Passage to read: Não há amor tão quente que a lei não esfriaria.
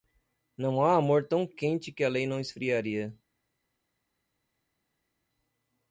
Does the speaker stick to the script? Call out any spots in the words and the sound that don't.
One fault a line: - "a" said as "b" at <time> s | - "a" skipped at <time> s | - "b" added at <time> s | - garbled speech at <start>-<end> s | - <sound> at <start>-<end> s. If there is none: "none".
none